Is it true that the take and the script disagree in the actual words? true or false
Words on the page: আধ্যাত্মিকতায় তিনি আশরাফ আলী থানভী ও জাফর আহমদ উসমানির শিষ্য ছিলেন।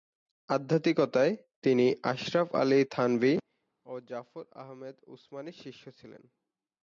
false